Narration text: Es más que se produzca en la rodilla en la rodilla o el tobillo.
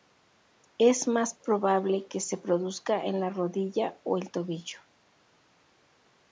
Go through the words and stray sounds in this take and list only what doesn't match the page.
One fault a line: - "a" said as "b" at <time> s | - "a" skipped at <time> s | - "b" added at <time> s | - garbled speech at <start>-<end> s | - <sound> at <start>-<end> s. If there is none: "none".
- "probable" added at 1.4 s
- "en la rodilla" skipped at 4.0 s